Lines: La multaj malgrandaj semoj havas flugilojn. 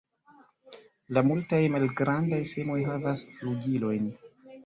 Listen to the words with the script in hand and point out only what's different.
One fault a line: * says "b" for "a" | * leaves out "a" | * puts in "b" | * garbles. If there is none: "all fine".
all fine